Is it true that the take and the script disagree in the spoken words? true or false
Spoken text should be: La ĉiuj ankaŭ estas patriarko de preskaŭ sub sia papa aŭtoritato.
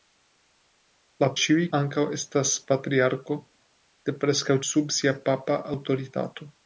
false